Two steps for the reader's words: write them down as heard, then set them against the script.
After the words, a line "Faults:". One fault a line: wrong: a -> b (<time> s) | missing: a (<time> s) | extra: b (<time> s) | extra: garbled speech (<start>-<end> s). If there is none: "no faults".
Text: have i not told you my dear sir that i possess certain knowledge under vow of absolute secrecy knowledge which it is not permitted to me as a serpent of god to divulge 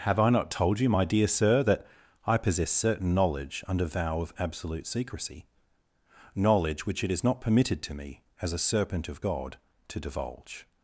have i not told you my dear sir that i possess certain knowledge under vow of absolute secrecy knowledge which it is not permitted to me as a serpent of god to divulge
Faults:
no faults